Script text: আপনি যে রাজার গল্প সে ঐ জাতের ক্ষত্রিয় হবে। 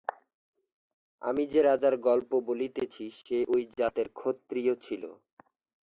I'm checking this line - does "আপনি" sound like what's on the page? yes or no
no